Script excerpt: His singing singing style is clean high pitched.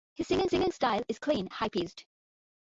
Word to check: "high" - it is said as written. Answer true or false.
true